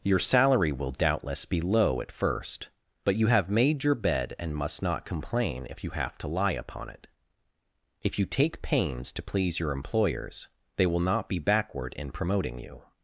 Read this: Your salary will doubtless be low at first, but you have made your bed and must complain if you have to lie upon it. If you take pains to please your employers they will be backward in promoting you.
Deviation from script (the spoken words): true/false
true